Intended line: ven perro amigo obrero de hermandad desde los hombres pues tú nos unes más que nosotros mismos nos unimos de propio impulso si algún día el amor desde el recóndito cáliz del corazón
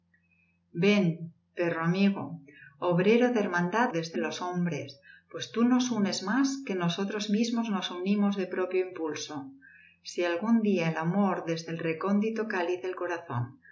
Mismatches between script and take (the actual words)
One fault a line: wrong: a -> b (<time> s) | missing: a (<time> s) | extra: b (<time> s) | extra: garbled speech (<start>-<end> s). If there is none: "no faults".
no faults